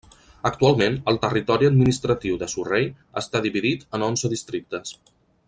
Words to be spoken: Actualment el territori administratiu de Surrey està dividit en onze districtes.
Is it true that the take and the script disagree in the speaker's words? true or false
false